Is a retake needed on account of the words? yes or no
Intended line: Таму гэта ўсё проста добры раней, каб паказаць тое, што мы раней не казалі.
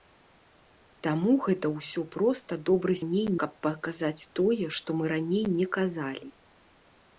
no